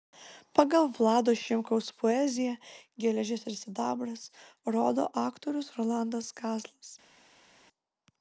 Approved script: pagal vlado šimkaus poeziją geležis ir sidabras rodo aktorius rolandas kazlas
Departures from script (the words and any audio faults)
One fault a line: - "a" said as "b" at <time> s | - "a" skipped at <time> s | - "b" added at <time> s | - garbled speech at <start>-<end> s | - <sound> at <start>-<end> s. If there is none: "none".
none